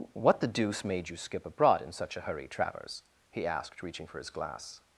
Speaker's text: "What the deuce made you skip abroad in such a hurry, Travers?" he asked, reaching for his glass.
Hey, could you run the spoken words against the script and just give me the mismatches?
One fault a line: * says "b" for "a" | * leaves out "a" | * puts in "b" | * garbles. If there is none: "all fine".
all fine